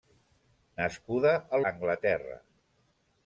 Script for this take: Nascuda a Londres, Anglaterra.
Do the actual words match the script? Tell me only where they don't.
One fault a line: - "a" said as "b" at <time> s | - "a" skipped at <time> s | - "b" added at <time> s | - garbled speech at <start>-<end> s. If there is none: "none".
- "Londres" skipped at 1.6 s